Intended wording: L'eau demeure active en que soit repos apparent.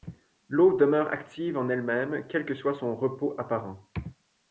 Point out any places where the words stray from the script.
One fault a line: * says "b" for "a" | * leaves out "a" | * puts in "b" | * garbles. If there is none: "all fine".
* puts in "elle même quel"
* puts in "son"